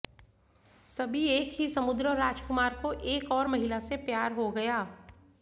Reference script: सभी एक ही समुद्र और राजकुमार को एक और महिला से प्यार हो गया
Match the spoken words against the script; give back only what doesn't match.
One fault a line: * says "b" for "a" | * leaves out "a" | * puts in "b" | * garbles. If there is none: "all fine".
all fine